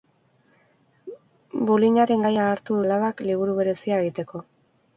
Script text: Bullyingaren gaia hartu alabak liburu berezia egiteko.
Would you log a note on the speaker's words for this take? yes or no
no